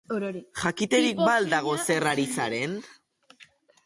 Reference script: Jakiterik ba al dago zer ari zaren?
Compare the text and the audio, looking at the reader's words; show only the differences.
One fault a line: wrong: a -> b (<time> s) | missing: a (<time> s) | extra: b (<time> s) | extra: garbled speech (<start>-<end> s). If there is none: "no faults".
no faults